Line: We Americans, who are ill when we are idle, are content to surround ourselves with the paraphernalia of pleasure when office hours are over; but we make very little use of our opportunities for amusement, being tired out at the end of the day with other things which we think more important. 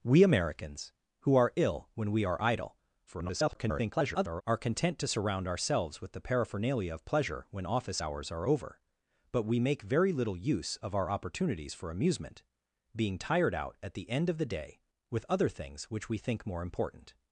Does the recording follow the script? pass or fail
fail